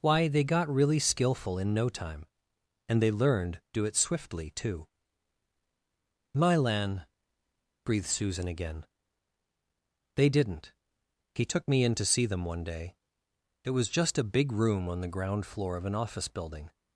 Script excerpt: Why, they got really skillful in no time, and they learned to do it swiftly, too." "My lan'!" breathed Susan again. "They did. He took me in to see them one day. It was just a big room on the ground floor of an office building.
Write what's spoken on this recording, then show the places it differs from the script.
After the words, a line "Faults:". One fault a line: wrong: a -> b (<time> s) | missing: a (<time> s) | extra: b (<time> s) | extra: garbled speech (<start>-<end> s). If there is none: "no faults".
Why, they got really skillful in no time, and they learned do it swiftly, too." "My lan'!" breathed Susan again. "They didn't. He took me in to see them one day. It was just a big room on the ground floor of an office building.
Faults:
missing: to (3.6 s)
wrong: did -> didn't (10.3 s)